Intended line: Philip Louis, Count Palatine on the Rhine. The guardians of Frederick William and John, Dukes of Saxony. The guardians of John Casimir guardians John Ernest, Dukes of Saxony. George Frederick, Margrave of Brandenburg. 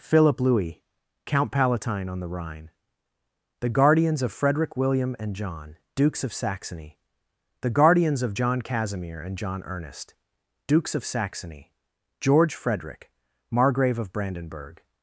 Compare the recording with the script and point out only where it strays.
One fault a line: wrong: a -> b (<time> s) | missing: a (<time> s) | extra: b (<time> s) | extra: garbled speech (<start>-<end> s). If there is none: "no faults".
wrong: guardians -> and (9.2 s)